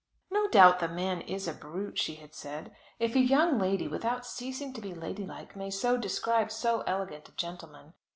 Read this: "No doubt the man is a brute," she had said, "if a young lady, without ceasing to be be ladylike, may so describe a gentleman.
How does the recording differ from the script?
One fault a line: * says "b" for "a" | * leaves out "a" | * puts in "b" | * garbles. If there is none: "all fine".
* leaves out "be"
* puts in "so elegant"